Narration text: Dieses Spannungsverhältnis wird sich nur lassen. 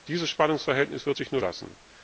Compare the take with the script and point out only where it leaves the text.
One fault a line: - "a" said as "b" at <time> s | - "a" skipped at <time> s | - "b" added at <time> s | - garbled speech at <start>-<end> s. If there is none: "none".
none